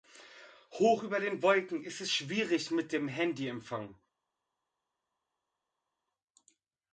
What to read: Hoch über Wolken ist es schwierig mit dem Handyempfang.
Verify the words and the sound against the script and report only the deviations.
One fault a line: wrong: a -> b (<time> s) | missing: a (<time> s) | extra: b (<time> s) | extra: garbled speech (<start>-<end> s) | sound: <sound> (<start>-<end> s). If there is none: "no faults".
extra: den (1.2 s)